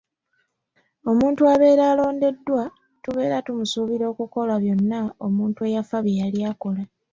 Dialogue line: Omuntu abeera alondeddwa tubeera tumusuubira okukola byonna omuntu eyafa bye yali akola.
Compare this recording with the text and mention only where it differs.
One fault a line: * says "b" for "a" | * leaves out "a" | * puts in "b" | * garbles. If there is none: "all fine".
all fine